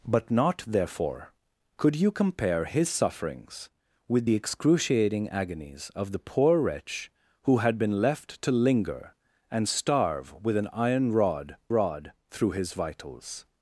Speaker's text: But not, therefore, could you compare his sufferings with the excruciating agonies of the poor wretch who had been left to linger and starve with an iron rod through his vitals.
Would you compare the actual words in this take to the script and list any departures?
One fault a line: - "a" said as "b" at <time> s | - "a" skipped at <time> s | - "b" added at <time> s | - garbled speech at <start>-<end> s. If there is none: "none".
- "rod" added at 11.7 s